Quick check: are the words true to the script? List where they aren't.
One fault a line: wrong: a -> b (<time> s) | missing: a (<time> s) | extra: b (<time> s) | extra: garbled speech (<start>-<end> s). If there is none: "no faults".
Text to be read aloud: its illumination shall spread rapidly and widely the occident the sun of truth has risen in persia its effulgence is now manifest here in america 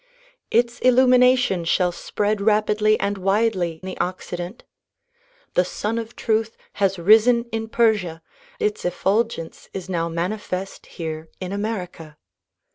no faults